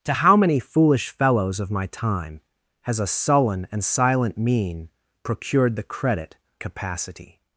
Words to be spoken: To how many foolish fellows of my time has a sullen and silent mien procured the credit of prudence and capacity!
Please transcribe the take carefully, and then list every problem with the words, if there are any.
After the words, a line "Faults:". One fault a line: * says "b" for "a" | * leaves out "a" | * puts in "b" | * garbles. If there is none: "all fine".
To how many foolish fellows of my time has a sullen and silent mien procured the credit capacity!
Faults:
* leaves out "of prudence and"